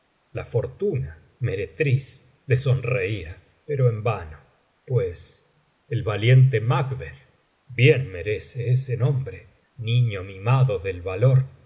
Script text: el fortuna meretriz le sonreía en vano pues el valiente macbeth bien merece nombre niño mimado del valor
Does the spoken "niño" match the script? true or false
true